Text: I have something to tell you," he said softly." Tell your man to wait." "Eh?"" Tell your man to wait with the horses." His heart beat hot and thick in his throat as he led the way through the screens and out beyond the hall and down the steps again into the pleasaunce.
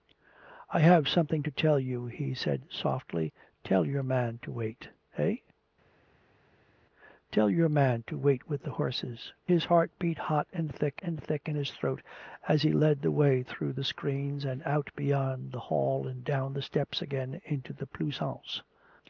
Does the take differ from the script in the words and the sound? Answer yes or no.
yes